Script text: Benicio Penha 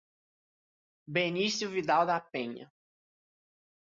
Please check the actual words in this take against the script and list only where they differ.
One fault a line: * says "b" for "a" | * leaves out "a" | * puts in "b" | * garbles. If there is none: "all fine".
* puts in "Vidal da"